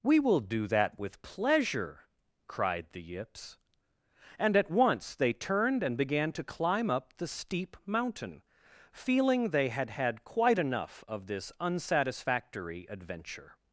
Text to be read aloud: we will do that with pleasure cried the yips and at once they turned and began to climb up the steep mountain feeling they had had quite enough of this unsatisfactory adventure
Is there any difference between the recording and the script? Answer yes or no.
no